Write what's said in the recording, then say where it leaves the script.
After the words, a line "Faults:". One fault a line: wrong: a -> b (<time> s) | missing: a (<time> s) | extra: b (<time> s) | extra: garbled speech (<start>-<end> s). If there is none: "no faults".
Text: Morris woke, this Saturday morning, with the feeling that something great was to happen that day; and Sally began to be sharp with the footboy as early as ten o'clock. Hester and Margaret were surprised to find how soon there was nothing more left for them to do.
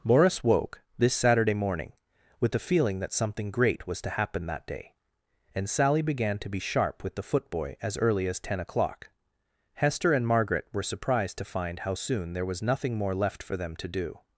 Morris woke, this Saturday morning, with the feeling that something great was to happen that day; and Sally began to be sharp with the footboy as early as ten o'clock. Hester and Margaret were surprised to find how soon there was nothing more left for them to do.
Faults:
no faults